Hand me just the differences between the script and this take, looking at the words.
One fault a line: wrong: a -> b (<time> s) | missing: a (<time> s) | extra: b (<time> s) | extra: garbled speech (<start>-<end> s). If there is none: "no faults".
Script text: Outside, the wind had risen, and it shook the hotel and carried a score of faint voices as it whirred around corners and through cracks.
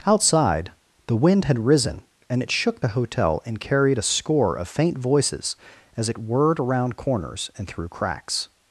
no faults